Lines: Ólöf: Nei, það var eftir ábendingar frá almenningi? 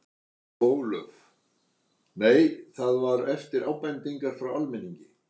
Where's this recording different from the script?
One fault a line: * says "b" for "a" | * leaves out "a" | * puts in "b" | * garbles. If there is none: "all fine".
all fine